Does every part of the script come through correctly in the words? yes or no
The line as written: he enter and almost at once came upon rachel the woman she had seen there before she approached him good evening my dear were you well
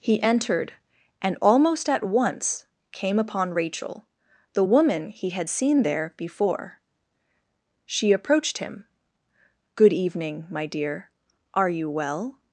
no